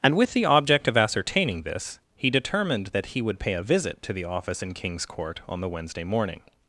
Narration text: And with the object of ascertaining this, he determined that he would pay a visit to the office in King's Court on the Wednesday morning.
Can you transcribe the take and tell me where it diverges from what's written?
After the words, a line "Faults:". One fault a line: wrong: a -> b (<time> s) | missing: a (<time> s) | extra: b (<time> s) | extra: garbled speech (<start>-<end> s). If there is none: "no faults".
And with the object of ascertaining this, he determined that he would pay a visit to the office in King's Court on the Wednesday morning.
Faults:
no faults